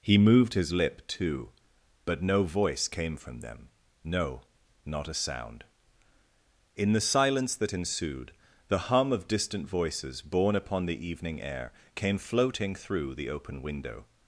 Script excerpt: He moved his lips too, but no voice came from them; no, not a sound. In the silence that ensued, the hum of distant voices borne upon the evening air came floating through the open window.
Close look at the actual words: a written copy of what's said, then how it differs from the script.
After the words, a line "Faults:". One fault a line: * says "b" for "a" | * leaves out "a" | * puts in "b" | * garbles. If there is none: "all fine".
He moved his lip too, but no voice came from them; no, not a sound. In the silence that ensued, the hum of distant voices borne upon the evening air came floating through the open window.
Faults:
* says "lip" for "lips"